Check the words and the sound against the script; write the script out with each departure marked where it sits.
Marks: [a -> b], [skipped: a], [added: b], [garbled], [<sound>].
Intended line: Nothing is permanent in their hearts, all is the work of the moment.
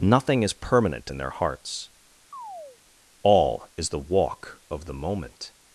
Nothing is permanent in their hearts, [chirp] all is the [work -> walk] of the moment.